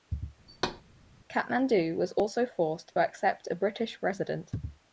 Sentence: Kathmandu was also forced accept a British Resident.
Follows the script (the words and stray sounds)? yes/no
no